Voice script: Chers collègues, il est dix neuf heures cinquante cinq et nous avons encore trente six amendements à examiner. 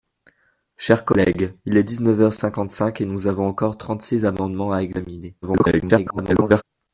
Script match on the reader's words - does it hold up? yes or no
no